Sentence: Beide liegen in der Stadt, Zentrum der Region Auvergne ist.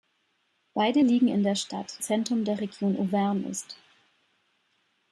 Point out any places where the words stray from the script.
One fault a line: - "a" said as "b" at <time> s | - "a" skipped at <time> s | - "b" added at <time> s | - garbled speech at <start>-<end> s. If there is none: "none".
none